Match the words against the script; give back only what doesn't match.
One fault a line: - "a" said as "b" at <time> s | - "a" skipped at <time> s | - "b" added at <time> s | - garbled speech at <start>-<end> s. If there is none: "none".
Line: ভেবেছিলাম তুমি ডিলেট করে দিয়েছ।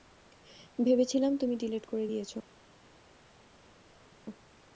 none